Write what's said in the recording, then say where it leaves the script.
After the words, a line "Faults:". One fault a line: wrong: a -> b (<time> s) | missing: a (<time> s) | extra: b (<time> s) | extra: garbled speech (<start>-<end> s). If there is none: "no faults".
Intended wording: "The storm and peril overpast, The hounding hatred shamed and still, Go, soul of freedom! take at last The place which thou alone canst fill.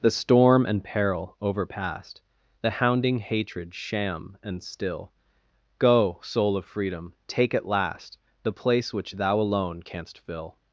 "The storm and peril overpast, The hounding hatred sham and still, Go, soul of freedom! take at last The place which thou alone canst fill.
Faults:
wrong: shamed -> sham (3.8 s)